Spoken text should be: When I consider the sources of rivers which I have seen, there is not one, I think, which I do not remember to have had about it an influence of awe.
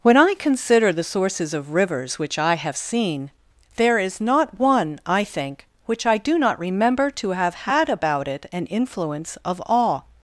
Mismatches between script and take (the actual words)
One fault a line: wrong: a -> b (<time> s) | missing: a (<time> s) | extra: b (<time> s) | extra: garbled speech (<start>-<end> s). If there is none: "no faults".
no faults